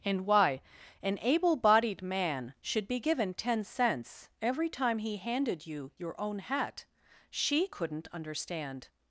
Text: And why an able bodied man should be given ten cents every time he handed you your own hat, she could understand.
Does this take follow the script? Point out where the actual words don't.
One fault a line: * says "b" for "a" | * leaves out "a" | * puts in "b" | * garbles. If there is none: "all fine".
* says "couldn't" for "could"